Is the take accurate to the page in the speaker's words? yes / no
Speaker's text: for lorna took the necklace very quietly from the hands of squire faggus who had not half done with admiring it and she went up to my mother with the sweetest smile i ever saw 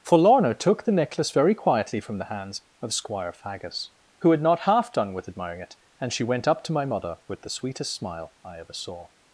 yes